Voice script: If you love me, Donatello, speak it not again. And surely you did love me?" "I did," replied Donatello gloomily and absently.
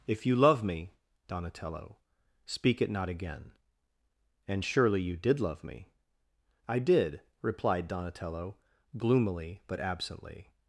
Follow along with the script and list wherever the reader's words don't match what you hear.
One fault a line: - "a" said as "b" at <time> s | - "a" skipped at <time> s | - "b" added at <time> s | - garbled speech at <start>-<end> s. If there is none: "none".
- "and" said as "but" at 9.7 s